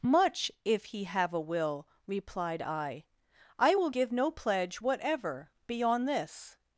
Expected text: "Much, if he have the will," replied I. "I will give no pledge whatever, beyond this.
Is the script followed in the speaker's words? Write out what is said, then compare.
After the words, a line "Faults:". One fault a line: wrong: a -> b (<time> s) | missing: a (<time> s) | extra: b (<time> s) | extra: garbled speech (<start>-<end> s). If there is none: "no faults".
"Much, if he have a will," replied I. "I will give no pledge whatever, beyond this.
Faults:
wrong: the -> a (1.3 s)